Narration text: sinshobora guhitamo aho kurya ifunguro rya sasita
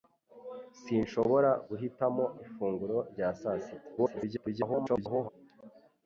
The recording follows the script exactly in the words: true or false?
false